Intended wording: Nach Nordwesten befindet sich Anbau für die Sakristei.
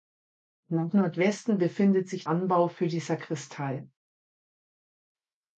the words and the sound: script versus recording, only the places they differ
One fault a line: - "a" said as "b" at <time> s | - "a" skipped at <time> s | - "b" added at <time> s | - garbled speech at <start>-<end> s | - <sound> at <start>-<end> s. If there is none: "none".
none